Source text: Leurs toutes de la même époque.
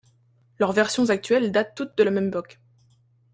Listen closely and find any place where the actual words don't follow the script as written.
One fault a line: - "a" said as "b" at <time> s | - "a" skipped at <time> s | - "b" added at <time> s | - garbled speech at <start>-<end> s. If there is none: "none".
- "versions actuelles datent" added at 0.7 s